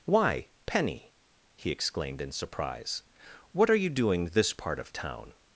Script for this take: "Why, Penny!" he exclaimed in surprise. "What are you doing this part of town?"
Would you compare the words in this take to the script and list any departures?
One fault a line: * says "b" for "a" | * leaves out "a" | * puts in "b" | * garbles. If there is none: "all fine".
all fine